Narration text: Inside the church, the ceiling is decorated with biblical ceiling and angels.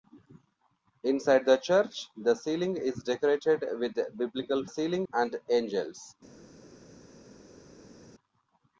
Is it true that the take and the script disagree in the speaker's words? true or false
false